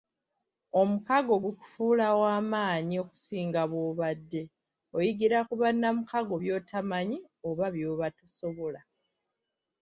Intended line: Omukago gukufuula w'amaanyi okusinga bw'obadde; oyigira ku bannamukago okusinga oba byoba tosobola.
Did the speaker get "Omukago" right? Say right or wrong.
right